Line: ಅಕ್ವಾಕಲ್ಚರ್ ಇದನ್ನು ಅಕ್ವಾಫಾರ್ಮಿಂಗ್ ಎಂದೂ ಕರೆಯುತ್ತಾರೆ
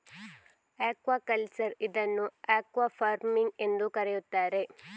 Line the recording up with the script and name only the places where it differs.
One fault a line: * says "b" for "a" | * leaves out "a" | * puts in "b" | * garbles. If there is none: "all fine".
all fine